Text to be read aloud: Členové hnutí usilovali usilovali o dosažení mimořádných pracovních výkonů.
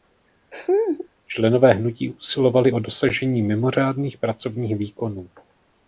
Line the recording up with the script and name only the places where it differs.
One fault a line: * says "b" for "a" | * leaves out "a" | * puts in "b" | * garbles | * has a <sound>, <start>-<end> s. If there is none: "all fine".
* has a laugh, 0.5-1.1 s
* leaves out "usilovali"